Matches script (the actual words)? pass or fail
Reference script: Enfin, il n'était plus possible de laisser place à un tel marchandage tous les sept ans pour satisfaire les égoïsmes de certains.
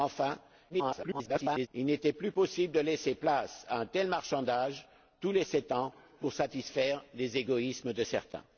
fail